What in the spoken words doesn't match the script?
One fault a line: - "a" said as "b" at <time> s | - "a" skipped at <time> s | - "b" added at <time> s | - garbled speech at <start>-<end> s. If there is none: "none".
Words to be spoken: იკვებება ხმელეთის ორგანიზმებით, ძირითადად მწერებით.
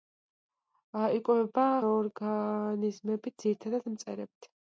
- "ხმელეთის" skipped at 1.6 s